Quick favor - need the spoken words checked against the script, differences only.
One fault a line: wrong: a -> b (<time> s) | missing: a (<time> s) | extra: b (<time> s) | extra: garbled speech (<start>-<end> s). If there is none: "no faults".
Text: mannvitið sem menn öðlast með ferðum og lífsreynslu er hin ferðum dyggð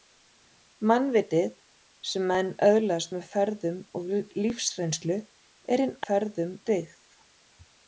no faults